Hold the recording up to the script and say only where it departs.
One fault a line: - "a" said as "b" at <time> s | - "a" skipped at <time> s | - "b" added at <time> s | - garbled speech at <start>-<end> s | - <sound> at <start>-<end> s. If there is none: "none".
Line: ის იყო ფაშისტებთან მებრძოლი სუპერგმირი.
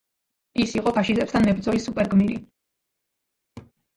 - laugh at 3.6-3.7 s